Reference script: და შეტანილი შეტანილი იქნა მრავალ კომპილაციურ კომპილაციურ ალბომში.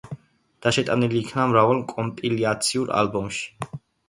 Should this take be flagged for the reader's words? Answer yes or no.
yes